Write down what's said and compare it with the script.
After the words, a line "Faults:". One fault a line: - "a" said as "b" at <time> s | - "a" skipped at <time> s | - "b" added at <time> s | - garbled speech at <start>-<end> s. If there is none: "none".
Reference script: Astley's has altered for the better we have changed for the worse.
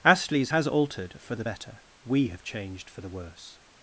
Astley's has altered for the better we have changed for the worse.
Faults:
none